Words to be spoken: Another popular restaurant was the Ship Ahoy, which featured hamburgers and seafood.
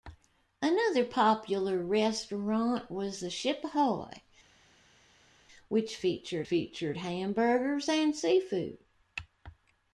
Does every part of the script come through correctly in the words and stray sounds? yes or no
no